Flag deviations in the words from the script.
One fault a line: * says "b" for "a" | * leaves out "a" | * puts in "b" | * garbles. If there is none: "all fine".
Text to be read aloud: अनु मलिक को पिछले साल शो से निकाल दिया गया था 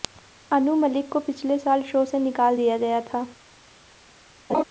all fine